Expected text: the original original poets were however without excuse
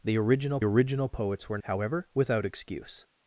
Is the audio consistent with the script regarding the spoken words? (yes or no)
yes